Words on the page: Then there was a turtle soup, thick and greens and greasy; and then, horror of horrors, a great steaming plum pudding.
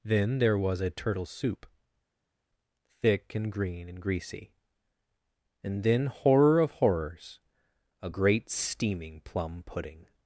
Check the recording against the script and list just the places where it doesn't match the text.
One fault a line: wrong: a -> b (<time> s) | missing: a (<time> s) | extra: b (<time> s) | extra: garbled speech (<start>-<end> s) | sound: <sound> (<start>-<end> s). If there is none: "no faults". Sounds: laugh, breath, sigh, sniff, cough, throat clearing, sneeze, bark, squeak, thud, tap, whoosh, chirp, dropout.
wrong: greens -> green (3.5 s)